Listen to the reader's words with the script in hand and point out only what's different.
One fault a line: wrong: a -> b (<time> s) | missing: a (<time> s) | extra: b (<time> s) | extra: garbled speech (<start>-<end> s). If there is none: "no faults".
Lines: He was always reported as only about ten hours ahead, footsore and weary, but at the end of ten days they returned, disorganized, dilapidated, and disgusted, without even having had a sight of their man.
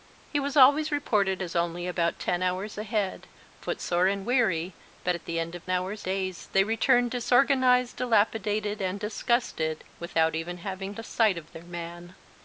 wrong: ten -> hours (5.7 s)
missing: had (10.9 s)